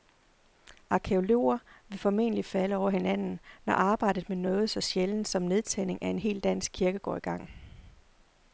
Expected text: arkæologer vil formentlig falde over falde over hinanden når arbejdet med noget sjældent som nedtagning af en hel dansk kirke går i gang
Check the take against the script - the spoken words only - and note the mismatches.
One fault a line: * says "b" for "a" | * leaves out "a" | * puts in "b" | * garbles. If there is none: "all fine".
* leaves out "falde over"
* puts in "så"